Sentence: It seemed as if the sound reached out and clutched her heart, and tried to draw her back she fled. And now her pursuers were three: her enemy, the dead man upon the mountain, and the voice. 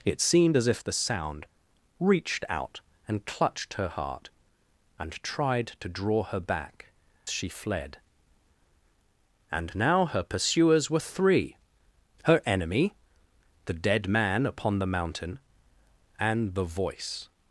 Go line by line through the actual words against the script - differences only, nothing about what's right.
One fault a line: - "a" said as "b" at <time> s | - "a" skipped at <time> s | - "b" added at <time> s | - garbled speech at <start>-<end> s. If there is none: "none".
none